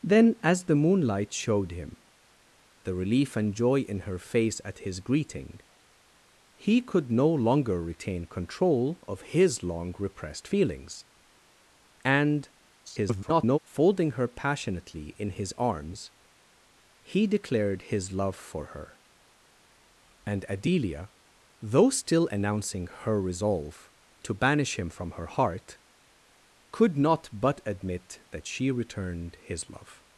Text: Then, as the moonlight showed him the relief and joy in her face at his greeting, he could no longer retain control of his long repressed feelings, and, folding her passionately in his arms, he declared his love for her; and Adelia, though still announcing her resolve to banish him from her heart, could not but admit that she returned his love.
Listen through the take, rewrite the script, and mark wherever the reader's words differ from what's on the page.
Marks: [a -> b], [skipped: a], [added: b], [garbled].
Then, as the moonlight showed him the relief and joy in her face at his greeting, he could no longer retain control of his long repressed feelings, and, [garbled] folding her passionately in his arms, he declared his love for her; and Adelia, though still announcing her resolve to banish him from her heart, could not but admit that she returned his love.